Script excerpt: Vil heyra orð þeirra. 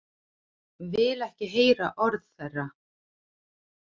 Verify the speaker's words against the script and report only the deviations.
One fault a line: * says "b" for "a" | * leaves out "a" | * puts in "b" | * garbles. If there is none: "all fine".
* puts in "ekki"